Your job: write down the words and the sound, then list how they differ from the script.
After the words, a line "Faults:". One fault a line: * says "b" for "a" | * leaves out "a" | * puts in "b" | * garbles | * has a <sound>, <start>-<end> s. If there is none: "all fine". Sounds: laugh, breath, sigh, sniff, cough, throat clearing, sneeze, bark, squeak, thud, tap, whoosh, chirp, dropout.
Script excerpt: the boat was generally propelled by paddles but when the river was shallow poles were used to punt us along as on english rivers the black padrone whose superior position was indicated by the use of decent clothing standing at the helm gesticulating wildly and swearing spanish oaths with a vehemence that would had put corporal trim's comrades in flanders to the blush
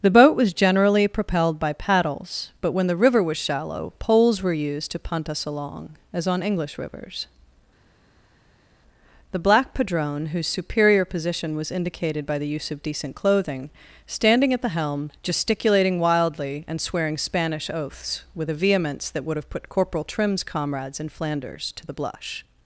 the boat was generally propelled by paddles but when the river was shallow poles were used to punt us along as on english rivers the black padrone whose superior position was indicated by the use of decent clothing standing at the helm gesticulating wildly and swearing spanish oaths with a vehemence that would have put corporal trim's comrades in flanders to the blush
Faults:
* says "have" for "had"